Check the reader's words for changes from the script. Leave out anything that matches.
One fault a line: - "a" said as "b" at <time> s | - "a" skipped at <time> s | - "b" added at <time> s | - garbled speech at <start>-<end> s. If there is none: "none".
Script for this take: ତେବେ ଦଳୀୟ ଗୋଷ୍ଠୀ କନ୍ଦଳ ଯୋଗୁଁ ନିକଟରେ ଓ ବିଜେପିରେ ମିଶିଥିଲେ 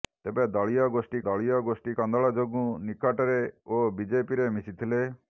- "ଦଳୀୟ ଗୋଷ୍ଠୀ" added at 1.2 s